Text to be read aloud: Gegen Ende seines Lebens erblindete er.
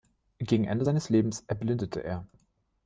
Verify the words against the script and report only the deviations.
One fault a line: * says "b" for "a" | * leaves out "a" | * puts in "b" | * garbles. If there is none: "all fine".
all fine